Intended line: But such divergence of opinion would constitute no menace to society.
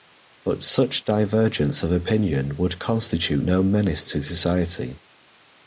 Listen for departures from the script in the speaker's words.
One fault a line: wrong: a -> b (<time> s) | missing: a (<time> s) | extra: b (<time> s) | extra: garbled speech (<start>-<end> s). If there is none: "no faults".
no faults